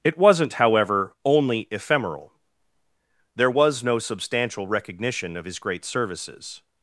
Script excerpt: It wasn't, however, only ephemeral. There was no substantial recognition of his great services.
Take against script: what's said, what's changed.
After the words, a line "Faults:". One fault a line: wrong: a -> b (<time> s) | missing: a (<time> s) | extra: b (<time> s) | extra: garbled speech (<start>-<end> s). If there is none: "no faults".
It wasn't, however, only ephemeral. There was no substantial recognition of his great services.
Faults:
no faults